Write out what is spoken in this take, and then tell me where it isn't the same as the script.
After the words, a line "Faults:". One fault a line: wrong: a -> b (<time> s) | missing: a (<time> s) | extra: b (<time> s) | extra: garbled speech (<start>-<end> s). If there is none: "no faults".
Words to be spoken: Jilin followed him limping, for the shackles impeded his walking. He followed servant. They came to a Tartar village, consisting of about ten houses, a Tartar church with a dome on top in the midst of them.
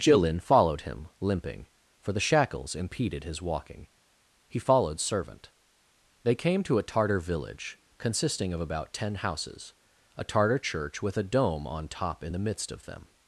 Jilin followed him limping, for the shackles impeded his walking. He followed servant. They came to a Tartar village, consisting of about ten houses, a Tartar church with a dome on top in the midst of them.
Faults:
no faults